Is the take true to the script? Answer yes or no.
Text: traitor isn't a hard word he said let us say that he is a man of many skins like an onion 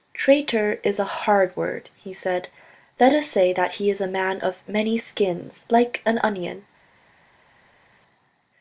no